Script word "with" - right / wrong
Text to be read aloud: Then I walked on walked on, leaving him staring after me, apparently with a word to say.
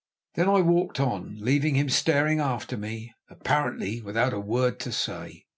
wrong